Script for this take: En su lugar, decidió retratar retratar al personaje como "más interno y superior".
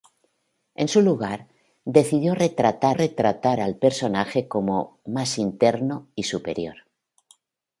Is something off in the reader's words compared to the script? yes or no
no